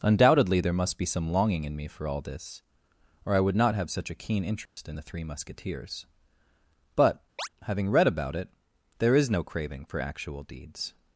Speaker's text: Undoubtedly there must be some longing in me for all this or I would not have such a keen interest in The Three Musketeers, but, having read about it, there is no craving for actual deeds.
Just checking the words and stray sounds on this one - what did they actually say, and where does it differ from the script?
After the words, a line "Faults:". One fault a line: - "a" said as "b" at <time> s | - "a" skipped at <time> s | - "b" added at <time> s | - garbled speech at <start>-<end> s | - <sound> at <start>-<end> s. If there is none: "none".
Undoubtedly there must be some longing in me for all this or I would not have such a keen interest in The Three Musketeers, but, having read about it, there is no craving for actual deeds.
Faults:
- dropout at 4.7-4.8 s
- chirp at 7.4-7.5 s